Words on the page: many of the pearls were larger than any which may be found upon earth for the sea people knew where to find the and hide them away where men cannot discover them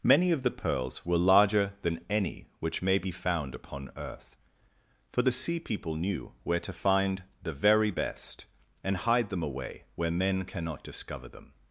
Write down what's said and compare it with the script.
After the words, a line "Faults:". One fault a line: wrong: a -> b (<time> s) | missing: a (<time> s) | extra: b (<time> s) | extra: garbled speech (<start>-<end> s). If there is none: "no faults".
many of the pearls were larger than any which may be found upon earth for the sea people knew where to find the very best and hide them away where men cannot discover them
Faults:
extra: very best (7.5 s)